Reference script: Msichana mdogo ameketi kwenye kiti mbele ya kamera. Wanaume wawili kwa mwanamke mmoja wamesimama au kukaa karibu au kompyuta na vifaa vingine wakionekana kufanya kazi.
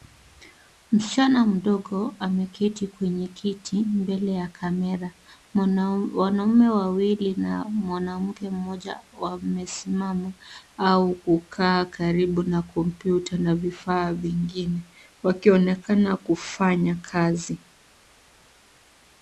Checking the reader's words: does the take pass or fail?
fail